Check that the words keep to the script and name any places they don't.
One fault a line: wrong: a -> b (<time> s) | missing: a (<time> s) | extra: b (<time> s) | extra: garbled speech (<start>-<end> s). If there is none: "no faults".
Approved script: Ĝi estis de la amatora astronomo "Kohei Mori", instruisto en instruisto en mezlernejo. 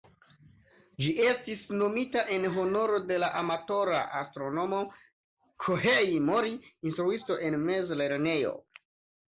extra: nomita en honoro (1.8 s)
missing: instruisto en (7.6 s)